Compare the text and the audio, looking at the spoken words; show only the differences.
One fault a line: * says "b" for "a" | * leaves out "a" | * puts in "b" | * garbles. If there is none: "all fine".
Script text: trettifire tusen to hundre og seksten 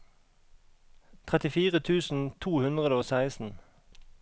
all fine